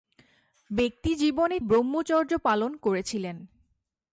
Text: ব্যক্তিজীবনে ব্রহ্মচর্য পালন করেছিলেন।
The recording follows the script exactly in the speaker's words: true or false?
true